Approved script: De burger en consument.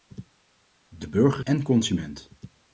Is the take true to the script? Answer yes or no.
yes